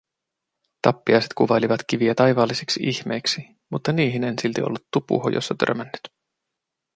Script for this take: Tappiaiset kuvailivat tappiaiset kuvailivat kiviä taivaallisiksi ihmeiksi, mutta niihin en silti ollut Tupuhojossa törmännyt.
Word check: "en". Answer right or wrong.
right